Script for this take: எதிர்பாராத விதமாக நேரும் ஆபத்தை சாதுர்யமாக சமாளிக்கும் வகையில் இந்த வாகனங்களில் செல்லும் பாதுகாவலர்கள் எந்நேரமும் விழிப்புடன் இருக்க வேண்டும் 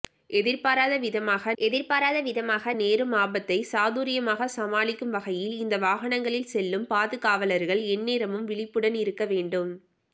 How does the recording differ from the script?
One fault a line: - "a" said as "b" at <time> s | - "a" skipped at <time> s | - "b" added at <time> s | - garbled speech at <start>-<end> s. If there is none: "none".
- "எதிர்பாராத விதமாக" added at 1.6 s